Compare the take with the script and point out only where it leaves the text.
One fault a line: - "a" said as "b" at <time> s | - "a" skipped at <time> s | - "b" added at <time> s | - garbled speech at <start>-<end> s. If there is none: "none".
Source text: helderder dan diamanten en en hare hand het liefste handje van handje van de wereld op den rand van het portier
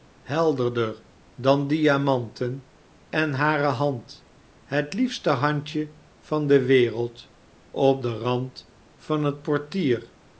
- "en" skipped at 3.3 s
- "handje van" skipped at 6.5 s